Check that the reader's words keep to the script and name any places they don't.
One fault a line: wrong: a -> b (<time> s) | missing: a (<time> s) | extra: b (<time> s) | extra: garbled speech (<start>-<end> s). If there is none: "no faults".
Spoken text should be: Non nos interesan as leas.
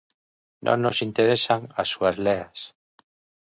extra: súas (1.9 s)